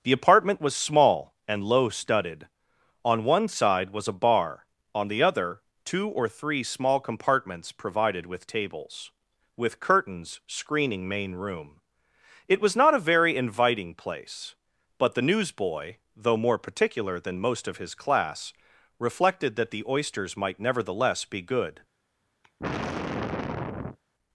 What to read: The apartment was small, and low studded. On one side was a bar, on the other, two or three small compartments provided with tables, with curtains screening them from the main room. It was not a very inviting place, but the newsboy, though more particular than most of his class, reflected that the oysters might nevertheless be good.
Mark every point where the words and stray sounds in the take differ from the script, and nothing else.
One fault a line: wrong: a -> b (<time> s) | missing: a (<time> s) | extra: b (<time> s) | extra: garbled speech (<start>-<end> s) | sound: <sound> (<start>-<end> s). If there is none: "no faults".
missing: them from the (11.1 s)
sound: sigh (22.4-24.0 s)